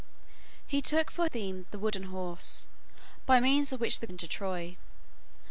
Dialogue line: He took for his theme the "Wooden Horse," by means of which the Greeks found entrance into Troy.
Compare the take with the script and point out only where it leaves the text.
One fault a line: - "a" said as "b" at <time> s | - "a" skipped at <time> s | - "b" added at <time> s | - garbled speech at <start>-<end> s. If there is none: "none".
- "his" skipped at 1.3 s
- "Greeks found entrance" skipped at 4.1 s